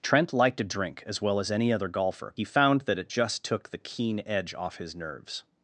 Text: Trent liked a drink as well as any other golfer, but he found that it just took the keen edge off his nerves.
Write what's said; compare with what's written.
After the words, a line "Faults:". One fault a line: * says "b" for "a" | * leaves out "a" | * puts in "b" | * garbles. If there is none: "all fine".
Trent liked a drink as well as any other golfer, he found that it just took the keen edge off his nerves.
Faults:
* leaves out "but"